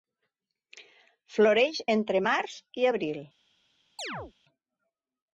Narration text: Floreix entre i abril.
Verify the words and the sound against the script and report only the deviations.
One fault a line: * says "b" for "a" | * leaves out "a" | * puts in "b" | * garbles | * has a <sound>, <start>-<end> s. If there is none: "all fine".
* puts in "març"
* has a chirp, 4.0-4.3 s